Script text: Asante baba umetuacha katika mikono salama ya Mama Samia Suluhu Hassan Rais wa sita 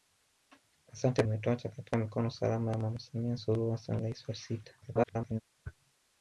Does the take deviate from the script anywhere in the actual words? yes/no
yes